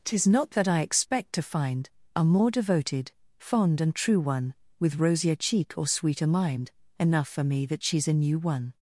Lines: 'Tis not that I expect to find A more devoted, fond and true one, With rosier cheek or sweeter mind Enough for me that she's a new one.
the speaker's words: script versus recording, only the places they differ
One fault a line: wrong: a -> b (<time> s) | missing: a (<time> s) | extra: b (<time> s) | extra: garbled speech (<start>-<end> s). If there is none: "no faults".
no faults